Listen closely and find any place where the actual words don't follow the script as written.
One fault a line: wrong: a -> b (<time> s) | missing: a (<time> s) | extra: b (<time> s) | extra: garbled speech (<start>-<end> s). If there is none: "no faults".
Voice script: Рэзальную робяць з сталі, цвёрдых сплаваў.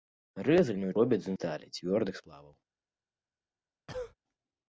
no faults